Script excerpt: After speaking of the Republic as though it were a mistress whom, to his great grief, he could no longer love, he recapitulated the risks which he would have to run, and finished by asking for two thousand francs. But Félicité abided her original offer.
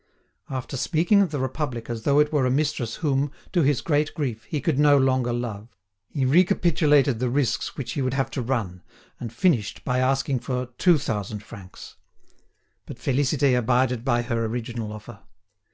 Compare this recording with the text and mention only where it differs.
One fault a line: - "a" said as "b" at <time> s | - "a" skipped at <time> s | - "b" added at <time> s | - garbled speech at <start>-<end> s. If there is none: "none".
- "by" added at 14.0 s